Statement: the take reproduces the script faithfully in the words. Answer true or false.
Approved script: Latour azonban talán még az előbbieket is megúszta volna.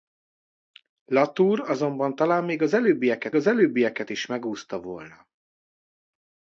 false